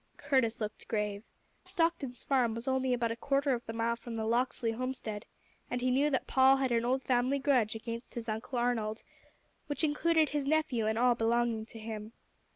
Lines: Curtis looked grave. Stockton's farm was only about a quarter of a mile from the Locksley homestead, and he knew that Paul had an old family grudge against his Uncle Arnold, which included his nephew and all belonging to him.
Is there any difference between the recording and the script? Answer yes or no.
no